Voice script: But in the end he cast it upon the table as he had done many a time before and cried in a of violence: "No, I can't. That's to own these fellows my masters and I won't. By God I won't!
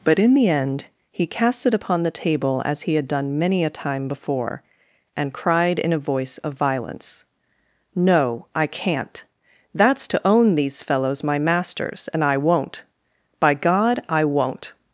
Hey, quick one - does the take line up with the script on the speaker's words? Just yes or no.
no